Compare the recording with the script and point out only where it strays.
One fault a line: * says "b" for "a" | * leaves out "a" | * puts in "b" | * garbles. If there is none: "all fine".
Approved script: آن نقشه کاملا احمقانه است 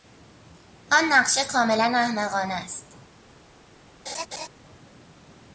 all fine